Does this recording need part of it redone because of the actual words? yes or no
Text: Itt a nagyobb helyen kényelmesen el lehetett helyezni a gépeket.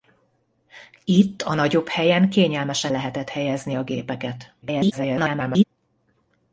yes